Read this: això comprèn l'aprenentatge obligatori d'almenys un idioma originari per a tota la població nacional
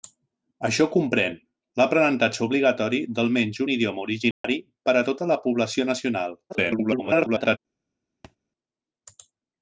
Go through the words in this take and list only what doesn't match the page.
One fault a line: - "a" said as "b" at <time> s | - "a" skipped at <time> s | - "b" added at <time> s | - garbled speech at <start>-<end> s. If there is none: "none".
- garbled speech at 6.5-7.6 s